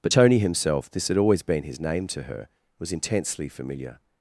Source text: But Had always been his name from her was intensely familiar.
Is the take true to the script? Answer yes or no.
no